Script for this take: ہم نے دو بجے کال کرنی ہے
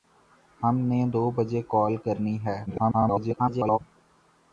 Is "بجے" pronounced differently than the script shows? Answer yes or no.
no